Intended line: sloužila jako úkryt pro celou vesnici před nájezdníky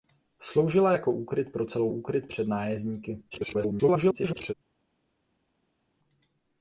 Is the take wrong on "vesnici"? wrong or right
wrong